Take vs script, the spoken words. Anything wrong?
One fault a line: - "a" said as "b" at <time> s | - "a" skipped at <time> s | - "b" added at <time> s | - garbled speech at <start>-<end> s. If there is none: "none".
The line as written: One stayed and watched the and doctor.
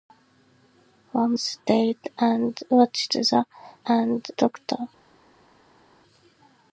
none